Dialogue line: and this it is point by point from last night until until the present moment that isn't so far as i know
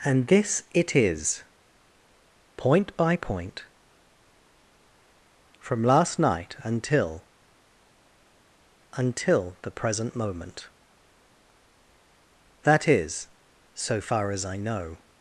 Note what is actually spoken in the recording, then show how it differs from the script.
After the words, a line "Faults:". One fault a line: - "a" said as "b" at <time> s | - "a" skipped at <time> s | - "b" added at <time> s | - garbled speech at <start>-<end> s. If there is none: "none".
and this it is point by point from last night until until the present moment that is so far as i know
Faults:
- "isn't" said as "is" at 12.9 s